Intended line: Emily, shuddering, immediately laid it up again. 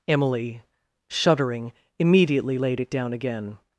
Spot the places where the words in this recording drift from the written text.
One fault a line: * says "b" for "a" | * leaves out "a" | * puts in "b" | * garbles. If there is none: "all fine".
* says "down" for "up"